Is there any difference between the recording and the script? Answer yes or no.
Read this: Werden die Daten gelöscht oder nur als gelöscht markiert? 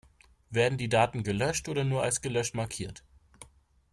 no